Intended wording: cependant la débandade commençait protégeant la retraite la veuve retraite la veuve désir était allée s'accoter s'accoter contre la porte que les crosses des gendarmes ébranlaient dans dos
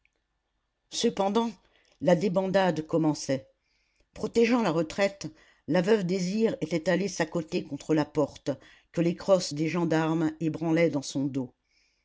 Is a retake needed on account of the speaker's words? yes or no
yes